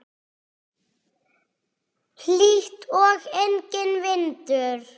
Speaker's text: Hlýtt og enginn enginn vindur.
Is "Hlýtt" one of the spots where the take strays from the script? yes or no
no